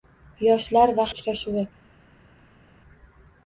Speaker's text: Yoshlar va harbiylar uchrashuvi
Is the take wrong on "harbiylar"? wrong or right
wrong